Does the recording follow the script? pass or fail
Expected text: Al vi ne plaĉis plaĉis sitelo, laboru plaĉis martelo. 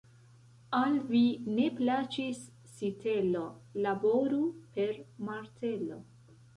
fail